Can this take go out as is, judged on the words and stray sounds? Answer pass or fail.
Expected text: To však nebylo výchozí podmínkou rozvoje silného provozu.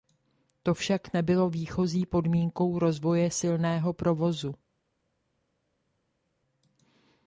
pass